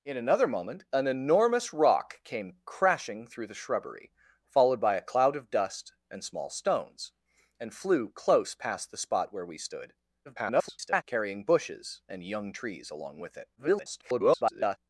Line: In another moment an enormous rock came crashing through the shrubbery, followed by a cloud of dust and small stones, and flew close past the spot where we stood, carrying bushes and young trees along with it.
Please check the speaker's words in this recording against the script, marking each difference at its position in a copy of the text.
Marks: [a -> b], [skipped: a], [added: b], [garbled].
In another moment an enormous rock came crashing through the shrubbery, followed by a cloud of dust and small stones, and flew close past the spot where we stood, [garbled] carrying bushes and young trees along with it. [garbled]